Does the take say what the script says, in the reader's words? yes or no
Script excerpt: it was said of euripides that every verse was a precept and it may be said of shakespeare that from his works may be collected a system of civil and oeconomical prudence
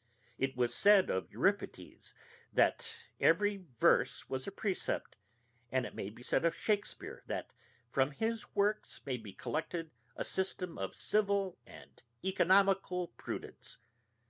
yes